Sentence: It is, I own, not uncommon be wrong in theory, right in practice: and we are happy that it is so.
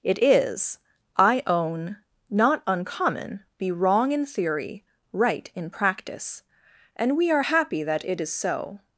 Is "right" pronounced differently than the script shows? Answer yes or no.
no